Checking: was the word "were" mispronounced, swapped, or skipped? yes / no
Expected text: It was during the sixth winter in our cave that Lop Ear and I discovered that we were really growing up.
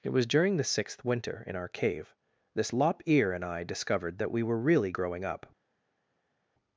no